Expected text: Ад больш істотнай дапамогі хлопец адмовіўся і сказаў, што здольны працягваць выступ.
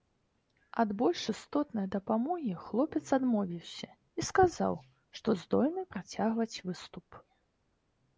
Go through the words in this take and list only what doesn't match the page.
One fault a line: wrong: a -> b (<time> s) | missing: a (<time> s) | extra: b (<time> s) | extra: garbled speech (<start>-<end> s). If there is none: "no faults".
no faults